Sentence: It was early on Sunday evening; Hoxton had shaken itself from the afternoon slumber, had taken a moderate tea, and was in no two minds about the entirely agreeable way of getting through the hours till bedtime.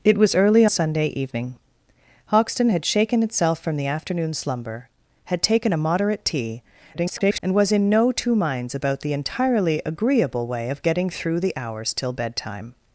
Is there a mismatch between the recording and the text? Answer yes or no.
yes